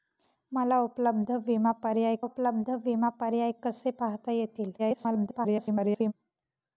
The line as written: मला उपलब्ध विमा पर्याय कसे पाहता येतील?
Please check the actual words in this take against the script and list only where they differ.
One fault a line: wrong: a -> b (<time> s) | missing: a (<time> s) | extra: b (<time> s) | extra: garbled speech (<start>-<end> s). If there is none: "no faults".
extra: उपलब्ध विमा पर्याय (2.2 s)
extra: garbled speech (4.8-6.1 s)